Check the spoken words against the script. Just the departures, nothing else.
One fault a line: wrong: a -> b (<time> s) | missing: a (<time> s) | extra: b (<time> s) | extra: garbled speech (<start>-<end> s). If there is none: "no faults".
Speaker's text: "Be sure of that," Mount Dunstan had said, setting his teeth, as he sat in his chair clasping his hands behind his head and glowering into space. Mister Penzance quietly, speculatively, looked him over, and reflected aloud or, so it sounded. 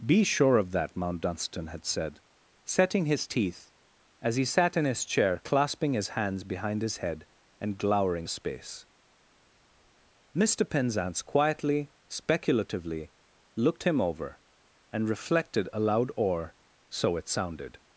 missing: into (8.3 s)